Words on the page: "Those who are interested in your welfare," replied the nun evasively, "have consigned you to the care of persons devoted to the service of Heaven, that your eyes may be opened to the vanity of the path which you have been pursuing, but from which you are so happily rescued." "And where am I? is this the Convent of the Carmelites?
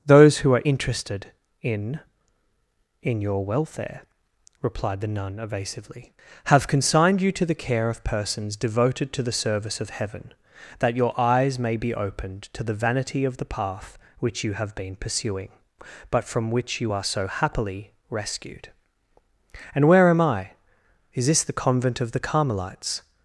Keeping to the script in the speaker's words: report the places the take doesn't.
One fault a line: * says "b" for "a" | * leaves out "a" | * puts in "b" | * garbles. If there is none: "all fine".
* puts in "in"